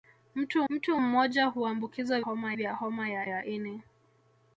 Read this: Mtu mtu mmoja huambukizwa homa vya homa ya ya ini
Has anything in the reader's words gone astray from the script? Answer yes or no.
no